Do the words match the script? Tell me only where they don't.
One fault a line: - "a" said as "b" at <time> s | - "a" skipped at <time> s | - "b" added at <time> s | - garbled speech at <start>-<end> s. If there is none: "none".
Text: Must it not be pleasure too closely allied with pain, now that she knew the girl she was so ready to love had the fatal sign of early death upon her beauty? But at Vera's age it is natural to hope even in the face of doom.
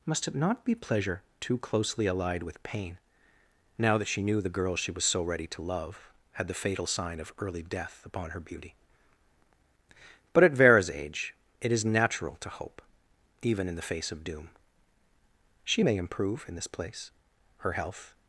- "She may improve in this place Her health" added at 15.6 s